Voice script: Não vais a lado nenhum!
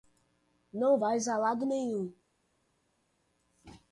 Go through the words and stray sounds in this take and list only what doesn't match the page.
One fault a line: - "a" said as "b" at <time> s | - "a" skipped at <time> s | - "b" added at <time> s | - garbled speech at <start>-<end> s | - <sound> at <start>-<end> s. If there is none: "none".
none